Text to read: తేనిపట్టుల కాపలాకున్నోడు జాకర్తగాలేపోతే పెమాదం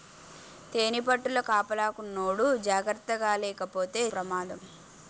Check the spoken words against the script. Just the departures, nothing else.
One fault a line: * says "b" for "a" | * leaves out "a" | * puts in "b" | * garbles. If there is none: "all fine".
all fine